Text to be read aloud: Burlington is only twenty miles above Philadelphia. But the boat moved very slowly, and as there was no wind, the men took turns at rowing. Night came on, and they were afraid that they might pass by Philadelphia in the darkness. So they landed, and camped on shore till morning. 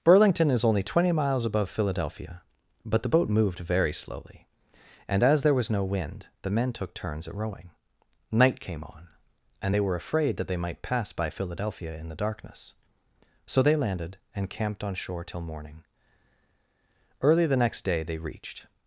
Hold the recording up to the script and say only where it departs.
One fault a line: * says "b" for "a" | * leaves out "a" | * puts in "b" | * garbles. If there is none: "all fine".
* puts in "Early the next day they reached"